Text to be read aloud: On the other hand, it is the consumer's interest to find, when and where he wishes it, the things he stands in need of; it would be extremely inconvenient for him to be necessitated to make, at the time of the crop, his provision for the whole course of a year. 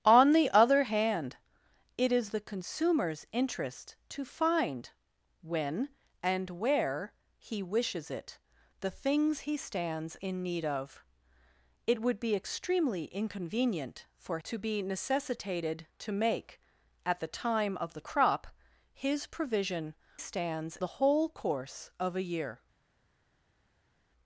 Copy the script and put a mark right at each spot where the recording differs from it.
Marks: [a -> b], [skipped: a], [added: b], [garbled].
On the other hand, it is the consumer's interest to find, when and where he wishes it, the things he stands in need of; it would be extremely inconvenient for [skipped: him] to be necessitated to make, at the time of the crop, his provision [for -> stands] the whole course of a year.